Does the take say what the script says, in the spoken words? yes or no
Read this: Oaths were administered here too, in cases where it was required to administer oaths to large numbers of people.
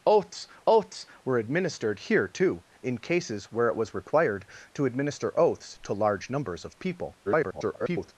no